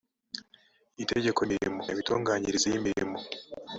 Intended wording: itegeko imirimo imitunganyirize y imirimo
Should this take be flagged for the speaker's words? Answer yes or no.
no